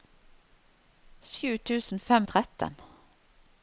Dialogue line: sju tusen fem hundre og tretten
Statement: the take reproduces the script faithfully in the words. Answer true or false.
false